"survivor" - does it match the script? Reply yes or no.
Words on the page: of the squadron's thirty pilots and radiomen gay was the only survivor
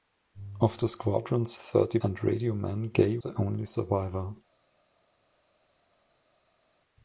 yes